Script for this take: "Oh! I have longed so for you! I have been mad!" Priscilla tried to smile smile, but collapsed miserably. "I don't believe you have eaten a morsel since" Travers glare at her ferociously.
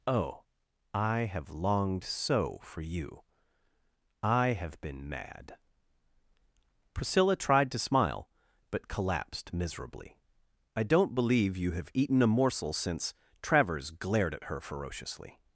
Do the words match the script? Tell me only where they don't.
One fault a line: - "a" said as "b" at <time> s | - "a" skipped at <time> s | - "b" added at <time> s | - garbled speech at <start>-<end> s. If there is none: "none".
- "smile" skipped at 8.3 s
- "glare" said as "glared" at 13.9 s